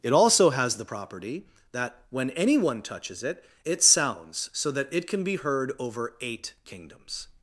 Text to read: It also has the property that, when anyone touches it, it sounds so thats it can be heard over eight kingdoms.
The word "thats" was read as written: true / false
false